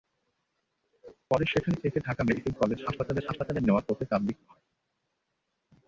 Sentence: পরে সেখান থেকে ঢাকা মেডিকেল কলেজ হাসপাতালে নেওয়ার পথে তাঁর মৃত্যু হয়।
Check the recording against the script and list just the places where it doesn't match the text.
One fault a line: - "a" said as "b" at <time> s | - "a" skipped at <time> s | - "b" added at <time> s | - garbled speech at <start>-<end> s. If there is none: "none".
- "হাসপাতালে" added at 3.2 s